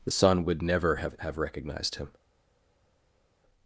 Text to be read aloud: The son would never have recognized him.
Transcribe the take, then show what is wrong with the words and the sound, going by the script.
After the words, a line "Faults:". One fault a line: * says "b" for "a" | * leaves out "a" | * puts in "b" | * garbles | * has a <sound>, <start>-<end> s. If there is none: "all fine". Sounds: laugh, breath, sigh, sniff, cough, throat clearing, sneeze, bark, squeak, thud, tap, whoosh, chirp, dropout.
The son would never have have recognized him.
Faults:
* puts in "have"